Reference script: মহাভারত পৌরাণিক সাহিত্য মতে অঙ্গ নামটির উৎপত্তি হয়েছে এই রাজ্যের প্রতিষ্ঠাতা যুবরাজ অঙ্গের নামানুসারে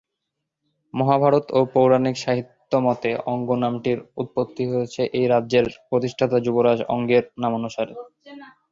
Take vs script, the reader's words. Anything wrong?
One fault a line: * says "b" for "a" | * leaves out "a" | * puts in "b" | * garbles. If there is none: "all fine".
* puts in "ও"